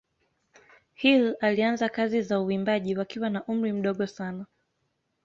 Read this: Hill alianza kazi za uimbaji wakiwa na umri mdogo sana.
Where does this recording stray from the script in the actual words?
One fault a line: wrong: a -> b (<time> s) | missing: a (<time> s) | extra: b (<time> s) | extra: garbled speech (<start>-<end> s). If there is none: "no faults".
no faults